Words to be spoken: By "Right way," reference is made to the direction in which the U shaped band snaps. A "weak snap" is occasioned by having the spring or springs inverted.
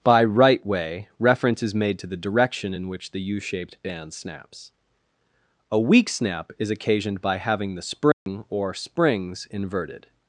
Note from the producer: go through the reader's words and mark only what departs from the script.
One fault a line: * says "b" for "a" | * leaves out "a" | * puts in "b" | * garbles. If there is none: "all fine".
all fine